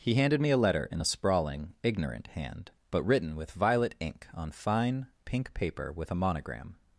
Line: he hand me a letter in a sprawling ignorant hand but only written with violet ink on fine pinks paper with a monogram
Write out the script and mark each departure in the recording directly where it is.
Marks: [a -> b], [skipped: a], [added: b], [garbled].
he [hand -> handed] me a letter in a sprawling ignorant hand but [skipped: only] written with violet ink on fine [pinks -> pink] paper with a monogram